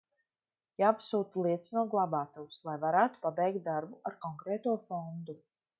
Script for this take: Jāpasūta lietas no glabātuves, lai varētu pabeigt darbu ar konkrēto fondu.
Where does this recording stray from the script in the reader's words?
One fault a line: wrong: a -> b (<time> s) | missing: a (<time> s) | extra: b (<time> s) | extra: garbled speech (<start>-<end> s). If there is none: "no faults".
no faults